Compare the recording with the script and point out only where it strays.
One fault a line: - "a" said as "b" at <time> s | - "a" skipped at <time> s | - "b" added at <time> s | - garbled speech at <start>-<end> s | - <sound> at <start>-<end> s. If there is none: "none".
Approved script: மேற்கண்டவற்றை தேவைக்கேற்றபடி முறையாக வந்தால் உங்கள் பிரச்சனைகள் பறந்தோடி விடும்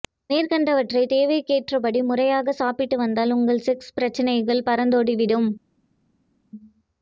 - "சாப்பிட்டு" added at 2.5 s
- "செக்ஸ்" added at 3.7 s